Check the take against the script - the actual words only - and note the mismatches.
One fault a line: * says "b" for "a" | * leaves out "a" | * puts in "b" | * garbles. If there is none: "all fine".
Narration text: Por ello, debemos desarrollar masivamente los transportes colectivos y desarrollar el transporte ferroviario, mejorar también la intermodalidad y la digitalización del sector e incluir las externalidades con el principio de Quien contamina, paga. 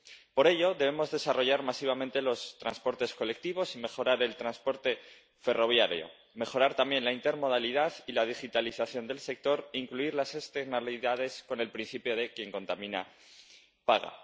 * says "mejorar" for "desarrollar"